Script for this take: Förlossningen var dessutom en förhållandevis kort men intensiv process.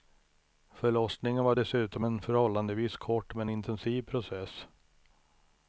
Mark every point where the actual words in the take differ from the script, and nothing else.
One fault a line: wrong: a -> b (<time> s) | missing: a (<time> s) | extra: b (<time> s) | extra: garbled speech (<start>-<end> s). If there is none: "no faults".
no faults